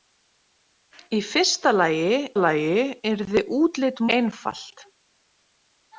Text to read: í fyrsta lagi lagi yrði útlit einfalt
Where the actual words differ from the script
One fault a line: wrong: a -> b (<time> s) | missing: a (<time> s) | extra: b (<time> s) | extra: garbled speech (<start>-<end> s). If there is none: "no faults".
no faults